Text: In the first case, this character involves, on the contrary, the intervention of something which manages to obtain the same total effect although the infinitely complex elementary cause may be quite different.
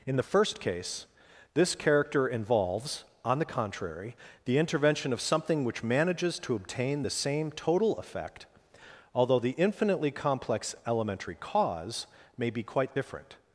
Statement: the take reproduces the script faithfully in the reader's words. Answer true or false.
true